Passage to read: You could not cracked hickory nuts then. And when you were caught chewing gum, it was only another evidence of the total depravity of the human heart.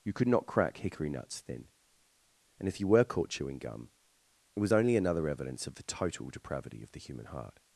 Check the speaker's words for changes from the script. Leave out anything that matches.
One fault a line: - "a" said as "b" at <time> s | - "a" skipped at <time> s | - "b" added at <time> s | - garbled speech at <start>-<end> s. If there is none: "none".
- "cracked" said as "crack" at 0.5 s
- "when" said as "if" at 2.7 s